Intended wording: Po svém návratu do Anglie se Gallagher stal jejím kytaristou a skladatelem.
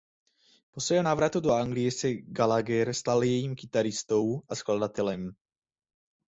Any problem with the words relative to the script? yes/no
no